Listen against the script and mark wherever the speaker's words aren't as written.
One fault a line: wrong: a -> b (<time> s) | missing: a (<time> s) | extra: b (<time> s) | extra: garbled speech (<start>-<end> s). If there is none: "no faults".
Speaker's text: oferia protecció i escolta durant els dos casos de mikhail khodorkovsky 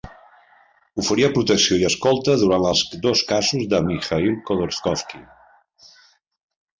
no faults